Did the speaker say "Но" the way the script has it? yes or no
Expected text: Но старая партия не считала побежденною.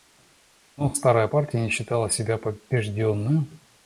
yes